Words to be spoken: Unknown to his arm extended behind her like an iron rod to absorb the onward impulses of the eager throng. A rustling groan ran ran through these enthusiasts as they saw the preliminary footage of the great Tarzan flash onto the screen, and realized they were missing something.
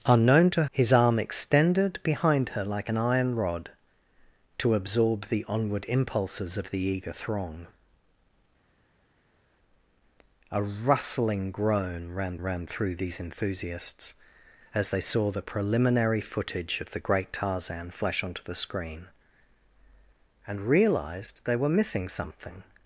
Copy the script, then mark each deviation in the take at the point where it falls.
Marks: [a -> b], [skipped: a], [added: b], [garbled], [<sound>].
Unknown to his arm extended behind her like an iron rod to absorb the onward impulses of the eager throng. A rustling groan ran ran through these enthusiasts as they saw the preliminary footage of the great Tarzan flash onto the screen, and realized they were missing something.